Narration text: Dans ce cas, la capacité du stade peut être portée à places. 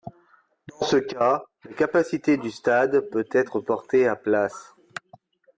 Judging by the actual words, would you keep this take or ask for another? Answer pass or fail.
pass